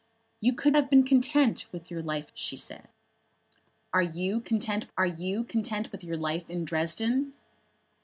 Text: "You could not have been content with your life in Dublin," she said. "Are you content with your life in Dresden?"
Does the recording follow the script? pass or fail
fail